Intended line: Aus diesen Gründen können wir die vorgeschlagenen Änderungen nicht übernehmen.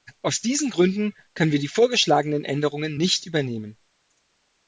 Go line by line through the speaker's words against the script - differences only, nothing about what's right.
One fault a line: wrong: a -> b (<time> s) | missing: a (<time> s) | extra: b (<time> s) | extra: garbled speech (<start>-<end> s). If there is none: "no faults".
no faults